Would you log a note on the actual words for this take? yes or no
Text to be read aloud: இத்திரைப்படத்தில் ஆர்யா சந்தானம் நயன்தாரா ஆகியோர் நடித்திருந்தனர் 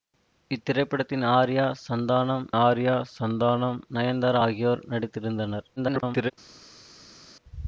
yes